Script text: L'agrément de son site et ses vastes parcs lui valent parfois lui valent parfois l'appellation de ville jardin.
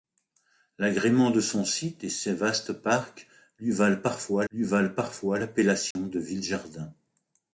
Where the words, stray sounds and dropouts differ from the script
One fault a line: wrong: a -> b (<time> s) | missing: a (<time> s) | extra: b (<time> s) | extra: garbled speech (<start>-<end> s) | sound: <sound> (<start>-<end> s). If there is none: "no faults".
sound: dropout (5.9-6.0 s)